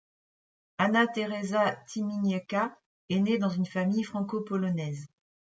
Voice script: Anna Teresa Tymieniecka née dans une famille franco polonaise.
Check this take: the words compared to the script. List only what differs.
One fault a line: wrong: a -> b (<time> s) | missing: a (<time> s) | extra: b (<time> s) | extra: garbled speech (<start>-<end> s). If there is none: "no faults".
extra: est (3.1 s)